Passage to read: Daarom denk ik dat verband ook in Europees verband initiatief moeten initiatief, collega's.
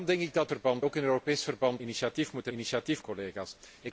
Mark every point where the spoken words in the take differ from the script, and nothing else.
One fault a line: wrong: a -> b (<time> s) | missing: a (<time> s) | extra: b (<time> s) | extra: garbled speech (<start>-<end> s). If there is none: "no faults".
no faults